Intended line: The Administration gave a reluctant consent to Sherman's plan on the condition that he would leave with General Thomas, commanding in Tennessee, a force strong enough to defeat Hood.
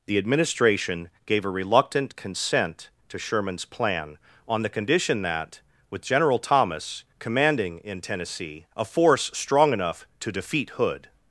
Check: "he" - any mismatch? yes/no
yes